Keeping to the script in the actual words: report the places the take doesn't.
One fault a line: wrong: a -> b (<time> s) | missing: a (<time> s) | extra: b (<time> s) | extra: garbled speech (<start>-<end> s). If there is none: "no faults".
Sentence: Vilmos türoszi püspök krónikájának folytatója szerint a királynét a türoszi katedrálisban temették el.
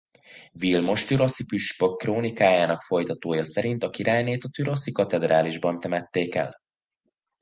no faults